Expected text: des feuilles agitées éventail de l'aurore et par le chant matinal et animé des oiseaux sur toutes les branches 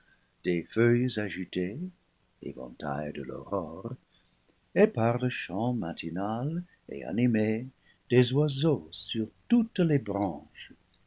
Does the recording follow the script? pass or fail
pass